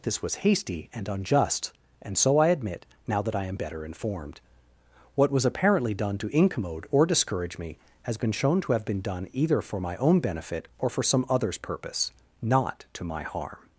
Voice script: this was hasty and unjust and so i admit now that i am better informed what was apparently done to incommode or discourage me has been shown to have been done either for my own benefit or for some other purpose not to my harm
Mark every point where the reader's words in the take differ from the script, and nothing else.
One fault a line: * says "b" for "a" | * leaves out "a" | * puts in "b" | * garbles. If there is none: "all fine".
* says "others" for "other"